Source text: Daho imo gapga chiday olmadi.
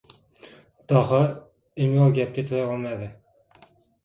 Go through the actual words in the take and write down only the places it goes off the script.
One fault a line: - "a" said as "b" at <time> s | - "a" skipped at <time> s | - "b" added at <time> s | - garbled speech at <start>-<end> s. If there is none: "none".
none